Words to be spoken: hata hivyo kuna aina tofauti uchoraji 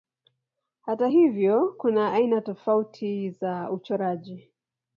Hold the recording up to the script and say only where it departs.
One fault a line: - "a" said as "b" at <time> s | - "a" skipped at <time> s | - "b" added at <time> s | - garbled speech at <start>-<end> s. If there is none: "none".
- "za" added at 3.3 s